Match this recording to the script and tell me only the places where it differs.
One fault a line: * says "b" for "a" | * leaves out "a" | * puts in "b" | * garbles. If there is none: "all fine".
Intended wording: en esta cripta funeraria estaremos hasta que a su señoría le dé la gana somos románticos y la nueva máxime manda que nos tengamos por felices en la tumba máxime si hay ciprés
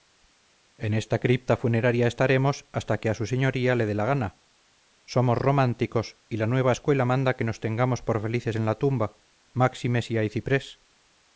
* says "escuela" for "máxime"